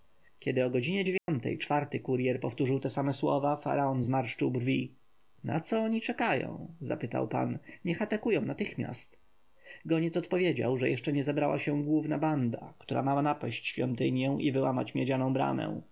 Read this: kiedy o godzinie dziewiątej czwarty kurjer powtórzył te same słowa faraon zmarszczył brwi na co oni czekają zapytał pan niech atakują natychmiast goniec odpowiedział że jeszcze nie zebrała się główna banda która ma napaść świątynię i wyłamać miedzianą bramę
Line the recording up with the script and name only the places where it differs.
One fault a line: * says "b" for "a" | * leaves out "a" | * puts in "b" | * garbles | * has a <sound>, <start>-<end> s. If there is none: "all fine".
* has a dropout, 1.2-1.3 s